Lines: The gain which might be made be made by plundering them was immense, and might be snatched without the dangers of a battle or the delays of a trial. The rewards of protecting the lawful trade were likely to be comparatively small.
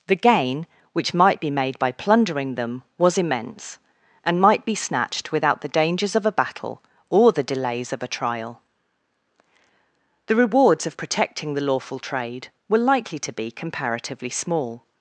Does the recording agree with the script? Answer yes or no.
no